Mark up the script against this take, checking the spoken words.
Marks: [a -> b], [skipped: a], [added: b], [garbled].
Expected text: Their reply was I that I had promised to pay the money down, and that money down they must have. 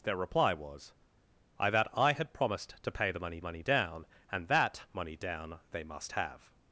Their reply was I that I had promised to pay the money [added: money] down, and that money down they must have.